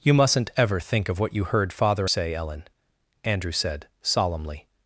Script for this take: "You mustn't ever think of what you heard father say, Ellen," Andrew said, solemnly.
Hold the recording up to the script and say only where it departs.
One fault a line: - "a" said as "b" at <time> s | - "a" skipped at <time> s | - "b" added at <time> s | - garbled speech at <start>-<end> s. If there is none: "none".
none